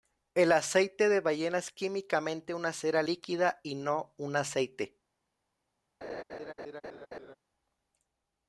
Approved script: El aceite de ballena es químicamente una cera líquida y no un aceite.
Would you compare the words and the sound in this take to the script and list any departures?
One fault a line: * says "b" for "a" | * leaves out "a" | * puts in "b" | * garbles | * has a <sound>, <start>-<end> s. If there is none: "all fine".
* has a laugh, 6.0-7.4 s